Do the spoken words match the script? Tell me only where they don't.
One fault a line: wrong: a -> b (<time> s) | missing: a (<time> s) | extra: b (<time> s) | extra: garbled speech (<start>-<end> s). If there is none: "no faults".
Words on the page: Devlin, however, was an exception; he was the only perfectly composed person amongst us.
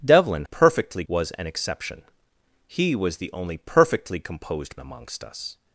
wrong: however -> perfectly (0.4 s)
missing: person (4.8 s)